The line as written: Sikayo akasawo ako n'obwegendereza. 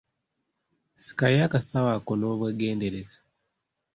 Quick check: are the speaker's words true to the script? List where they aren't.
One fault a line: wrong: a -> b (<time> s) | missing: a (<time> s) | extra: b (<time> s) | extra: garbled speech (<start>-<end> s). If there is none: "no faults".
no faults